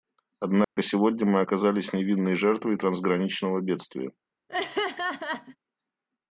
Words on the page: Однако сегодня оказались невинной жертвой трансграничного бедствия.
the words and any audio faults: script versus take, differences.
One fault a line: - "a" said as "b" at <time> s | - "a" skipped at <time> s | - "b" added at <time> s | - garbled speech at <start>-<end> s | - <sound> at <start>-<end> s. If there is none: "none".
- dropout at 0.6-0.8 s
- "мы" added at 1.3 s
- laugh at 4.5-5.6 s